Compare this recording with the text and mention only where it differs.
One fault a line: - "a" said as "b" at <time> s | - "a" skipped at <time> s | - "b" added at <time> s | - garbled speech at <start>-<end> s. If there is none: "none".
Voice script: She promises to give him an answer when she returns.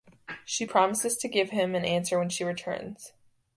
none